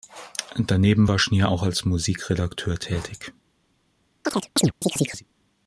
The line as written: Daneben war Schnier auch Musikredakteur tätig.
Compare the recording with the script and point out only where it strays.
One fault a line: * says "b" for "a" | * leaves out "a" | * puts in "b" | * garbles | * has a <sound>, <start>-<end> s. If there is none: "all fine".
* puts in "als"
* has a chirp, 4.2-5.2 s